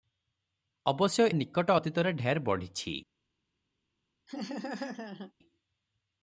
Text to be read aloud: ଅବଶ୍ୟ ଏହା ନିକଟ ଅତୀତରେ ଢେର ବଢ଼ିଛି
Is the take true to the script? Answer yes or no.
no